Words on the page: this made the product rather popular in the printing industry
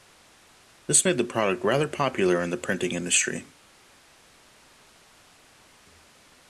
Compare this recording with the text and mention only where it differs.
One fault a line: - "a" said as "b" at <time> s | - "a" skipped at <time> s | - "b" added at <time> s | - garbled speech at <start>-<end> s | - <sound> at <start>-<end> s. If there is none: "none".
none